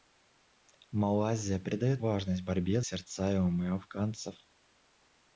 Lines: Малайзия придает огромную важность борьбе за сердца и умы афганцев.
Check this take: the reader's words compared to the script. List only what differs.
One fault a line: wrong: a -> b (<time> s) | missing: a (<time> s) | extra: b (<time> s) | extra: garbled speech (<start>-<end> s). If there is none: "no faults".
missing: огромную (2.0 s)
missing: за (2.8 s)